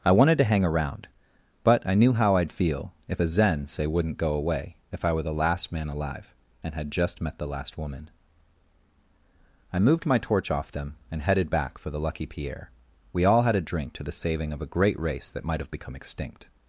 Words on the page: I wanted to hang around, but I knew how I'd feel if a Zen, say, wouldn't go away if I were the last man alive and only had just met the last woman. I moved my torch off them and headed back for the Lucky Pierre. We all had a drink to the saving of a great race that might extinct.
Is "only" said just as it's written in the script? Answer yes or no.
no